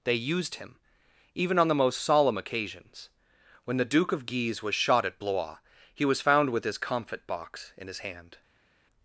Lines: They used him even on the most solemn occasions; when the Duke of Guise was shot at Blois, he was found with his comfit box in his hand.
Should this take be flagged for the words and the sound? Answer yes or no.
no